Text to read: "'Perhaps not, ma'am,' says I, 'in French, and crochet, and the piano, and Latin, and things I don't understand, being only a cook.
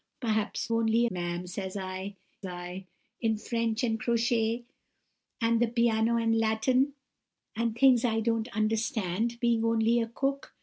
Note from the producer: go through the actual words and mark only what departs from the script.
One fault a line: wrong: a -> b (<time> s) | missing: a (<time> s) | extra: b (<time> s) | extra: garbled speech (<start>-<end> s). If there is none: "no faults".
wrong: not -> only (0.7 s)
extra: I (2.4 s)